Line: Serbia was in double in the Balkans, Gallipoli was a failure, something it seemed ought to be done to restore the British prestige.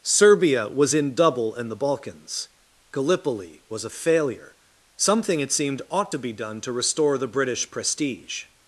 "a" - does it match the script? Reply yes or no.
yes